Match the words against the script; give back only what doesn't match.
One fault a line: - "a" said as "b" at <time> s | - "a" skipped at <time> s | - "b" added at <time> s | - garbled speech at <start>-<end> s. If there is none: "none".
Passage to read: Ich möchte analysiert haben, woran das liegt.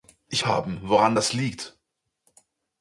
- "möchte analysiert" skipped at 0.5 s